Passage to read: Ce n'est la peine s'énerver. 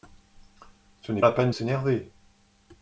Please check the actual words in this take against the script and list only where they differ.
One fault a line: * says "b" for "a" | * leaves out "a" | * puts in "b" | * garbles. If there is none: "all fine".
all fine